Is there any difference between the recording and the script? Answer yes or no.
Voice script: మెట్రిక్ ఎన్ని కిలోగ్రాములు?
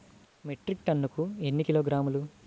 yes